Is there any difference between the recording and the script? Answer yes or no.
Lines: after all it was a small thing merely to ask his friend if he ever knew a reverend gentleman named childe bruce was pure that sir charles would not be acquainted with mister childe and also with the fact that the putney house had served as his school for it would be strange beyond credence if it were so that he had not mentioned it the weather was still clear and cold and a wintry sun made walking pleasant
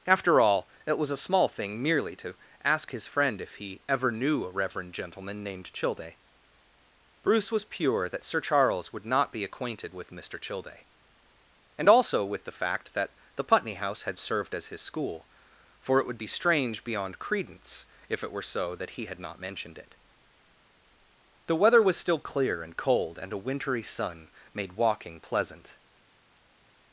no